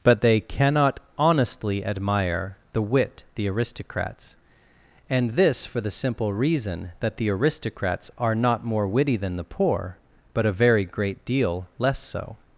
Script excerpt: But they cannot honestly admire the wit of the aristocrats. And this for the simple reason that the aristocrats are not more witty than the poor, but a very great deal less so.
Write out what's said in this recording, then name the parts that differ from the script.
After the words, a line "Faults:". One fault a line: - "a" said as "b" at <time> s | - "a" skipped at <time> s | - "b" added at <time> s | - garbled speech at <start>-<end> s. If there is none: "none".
But they cannot honestly admire the wit the aristocrats. And this for the simple reason that the aristocrats are not more witty than the poor, but a very great deal less so.
Faults:
- "of" skipped at 3.2 s